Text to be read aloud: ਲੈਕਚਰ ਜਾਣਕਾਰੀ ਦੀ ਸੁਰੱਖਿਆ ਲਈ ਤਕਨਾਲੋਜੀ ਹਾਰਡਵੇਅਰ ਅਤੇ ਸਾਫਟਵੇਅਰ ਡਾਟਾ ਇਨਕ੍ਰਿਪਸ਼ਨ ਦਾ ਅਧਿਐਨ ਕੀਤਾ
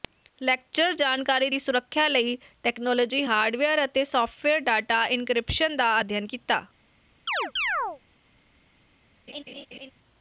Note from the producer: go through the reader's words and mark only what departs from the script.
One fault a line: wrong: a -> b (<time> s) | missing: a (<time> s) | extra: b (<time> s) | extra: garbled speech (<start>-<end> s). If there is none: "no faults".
no faults